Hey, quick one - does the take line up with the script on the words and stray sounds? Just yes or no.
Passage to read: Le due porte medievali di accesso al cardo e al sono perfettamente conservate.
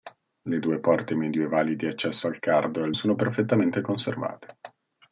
yes